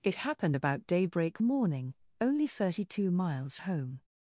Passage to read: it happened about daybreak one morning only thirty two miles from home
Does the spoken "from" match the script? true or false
false